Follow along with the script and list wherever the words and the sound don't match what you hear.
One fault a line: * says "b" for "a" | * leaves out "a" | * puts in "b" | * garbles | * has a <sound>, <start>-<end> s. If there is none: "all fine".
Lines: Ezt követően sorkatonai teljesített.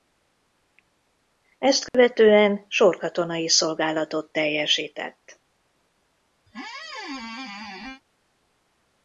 * has a dropout, 1.9-1.9 s
* puts in "szolgálatot"
* has a squeak, 6.5-8.0 s